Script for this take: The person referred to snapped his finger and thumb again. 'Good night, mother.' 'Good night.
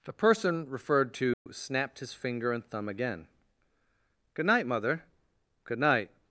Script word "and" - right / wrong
right